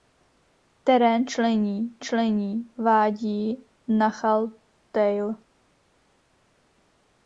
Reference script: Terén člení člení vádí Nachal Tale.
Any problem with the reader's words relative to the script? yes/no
no